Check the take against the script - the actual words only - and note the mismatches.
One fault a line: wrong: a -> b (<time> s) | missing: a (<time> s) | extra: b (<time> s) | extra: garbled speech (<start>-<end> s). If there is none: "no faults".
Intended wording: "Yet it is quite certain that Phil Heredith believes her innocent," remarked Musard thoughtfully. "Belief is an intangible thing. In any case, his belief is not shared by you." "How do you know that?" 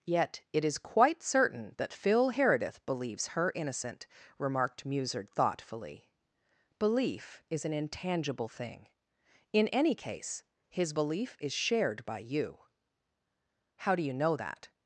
missing: not (11.5 s)